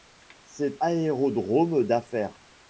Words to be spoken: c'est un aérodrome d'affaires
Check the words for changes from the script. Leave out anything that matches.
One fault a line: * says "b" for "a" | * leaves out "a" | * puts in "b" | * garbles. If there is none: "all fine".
* leaves out "un"